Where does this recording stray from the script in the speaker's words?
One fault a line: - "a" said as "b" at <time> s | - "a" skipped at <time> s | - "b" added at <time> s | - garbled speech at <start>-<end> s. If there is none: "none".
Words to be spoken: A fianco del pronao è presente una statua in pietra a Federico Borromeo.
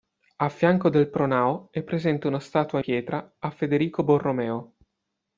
- "in" skipped at 2.8 s